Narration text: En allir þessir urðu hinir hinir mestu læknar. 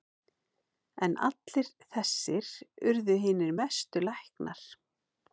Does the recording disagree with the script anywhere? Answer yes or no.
yes